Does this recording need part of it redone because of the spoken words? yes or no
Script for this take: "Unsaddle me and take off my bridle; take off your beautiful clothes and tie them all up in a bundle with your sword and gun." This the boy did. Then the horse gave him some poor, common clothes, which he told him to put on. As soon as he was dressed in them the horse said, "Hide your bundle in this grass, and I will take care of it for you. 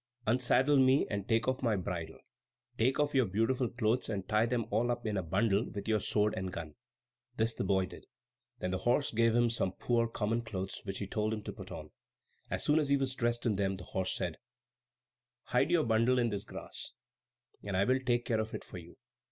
no